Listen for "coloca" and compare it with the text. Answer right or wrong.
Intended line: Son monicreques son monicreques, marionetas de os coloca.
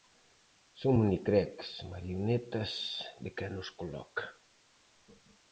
right